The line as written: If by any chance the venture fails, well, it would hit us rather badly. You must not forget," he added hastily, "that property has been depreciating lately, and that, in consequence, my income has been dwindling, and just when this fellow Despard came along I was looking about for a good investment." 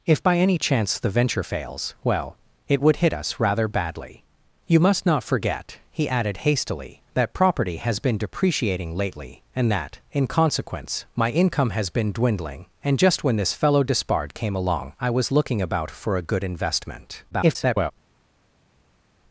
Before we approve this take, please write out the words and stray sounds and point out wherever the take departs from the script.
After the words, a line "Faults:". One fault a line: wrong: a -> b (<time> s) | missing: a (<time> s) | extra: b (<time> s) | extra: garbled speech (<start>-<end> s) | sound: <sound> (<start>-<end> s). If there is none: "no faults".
If by any chance the venture fails, well, it would hit us rather badly. You must not forget," he added hastily, "that property has been depreciating lately, and that, in consequence, my income has been dwindling, and just when this fellow Despard came along I was looking about for a good investment." [garbled]
Faults:
extra: garbled speech (17.3-17.9 s)